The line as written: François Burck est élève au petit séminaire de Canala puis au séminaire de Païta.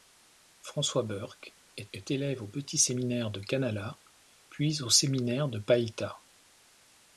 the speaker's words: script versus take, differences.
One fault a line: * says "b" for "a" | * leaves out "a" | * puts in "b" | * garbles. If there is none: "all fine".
* puts in "est"